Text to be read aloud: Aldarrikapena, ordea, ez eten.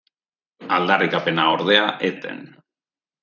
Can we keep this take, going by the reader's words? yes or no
yes